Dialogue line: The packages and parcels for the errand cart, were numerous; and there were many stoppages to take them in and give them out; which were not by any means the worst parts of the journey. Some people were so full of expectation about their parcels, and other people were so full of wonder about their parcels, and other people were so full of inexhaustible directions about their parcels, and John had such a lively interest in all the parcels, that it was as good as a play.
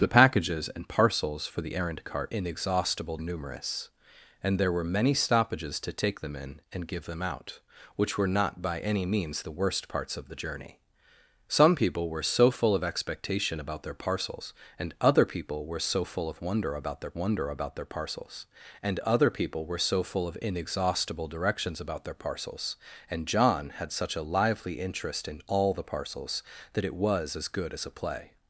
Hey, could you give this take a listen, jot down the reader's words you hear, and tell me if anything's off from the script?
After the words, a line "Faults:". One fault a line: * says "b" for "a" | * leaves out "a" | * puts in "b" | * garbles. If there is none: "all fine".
The packages and parcels for the errand cart, inexhaustible numerous; and there were many stoppages to take them in and give them out; which were not by any means the worst parts of the journey. Some people were so full of expectation about their parcels, and other people were so full of wonder about their wonder about their parcels, and other people were so full of inexhaustible directions about their parcels, and John had such a lively interest in all the parcels, that it was as good as a play.
Faults:
* says "inexhaustible" for "were"
* puts in "wonder about their"